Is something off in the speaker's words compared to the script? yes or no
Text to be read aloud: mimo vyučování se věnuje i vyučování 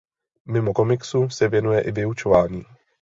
yes